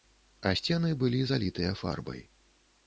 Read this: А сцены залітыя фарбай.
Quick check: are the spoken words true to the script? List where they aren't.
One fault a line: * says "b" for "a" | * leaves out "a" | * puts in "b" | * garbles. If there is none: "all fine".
* puts in "былі"